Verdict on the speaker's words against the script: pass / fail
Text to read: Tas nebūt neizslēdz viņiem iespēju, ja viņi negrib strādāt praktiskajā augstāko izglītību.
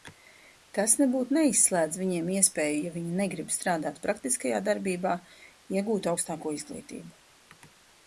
fail